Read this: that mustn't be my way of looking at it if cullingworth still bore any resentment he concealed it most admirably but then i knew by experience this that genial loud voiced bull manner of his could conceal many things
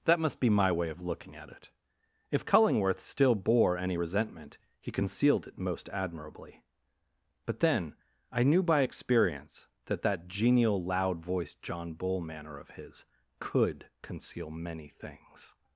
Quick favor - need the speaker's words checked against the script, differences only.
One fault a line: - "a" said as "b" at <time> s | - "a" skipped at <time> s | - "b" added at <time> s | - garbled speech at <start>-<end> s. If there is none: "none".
- "mustn't" said as "must" at 0.2 s
- "this" said as "that" at 9.9 s
- "john" added at 11.6 s